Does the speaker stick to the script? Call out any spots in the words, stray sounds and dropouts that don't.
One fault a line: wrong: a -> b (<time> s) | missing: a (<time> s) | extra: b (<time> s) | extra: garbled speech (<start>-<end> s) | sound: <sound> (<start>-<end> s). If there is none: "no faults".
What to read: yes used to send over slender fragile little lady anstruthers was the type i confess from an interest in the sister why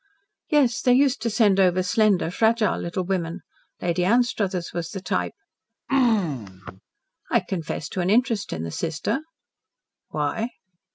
extra: they (0.8 s)
extra: women (3.0 s)
sound: throat clearing (5.9-6.8 s)
wrong: from -> to (7.9 s)